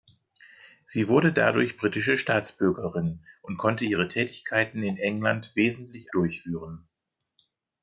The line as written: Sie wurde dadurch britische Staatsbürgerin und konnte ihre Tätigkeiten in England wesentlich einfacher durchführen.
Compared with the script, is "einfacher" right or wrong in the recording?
wrong